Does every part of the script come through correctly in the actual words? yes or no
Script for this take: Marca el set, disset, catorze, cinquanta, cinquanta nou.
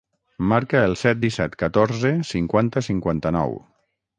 yes